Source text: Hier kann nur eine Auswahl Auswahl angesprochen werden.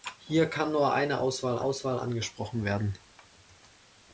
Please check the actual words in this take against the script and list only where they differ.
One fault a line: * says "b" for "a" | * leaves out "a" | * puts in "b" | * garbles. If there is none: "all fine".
all fine